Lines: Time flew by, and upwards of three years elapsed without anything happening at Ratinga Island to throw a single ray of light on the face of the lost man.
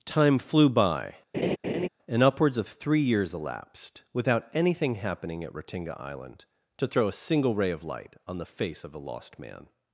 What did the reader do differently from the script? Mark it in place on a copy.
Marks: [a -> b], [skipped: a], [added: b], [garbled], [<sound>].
Time flew by, [laugh] and upwards of three years elapsed without anything happening at Ratinga Island to throw a single ray of light on the face of the lost man.